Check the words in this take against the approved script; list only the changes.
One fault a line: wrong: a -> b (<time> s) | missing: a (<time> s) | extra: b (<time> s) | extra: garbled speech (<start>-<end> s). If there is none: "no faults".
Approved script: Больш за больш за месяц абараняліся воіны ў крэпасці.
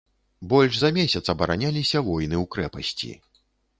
missing: больш за (0.9 s)